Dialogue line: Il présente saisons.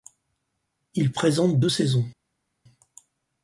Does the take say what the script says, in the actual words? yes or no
no